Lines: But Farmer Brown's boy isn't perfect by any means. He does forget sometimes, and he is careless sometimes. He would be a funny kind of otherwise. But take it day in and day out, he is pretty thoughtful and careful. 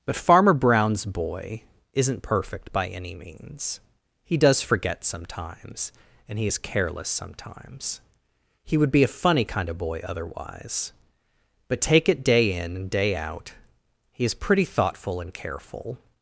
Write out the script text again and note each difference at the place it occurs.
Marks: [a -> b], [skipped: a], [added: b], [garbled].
But Farmer Brown's boy isn't perfect by any means. He does forget sometimes, and he is careless sometimes. He would be a funny kind of [added: boy] otherwise. But take it day in and day out, he is pretty thoughtful and careful.